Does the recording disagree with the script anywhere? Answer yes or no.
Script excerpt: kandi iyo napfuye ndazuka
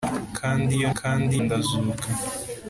yes